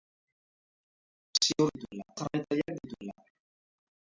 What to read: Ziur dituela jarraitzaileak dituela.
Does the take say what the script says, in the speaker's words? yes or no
yes